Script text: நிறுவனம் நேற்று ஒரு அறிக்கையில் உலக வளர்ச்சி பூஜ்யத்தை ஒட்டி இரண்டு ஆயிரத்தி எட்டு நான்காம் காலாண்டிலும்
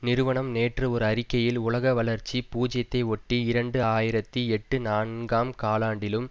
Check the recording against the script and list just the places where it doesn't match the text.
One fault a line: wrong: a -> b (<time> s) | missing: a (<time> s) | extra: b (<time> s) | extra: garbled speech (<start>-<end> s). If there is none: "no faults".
no faults